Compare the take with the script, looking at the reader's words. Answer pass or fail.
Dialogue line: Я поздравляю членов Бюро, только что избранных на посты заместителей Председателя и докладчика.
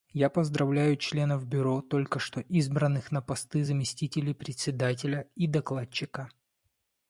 pass